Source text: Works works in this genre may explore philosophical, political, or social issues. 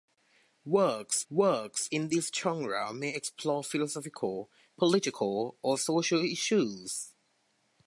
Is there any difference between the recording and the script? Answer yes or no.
no